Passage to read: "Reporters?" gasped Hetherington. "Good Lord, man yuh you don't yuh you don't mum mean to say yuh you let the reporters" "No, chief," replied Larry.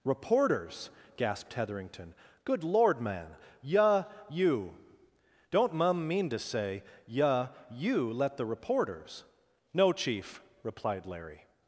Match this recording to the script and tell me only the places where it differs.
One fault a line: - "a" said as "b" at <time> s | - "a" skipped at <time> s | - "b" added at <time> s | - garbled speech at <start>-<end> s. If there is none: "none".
- "yuh you don't" skipped at 5.7 s